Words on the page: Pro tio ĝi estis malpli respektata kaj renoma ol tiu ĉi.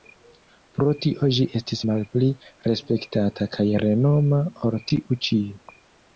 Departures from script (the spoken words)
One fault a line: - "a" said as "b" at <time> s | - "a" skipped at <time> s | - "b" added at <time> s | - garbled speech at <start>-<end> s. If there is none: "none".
none